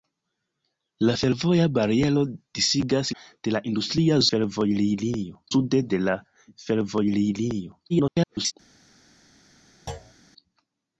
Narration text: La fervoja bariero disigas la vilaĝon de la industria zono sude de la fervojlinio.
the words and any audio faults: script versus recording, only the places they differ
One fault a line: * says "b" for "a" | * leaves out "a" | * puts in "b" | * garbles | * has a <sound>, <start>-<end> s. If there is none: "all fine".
* leaves out "la vilaĝon"
* says "fervojlinio" for "zono"
* garbles
* has a thud, 9.9-10.1 s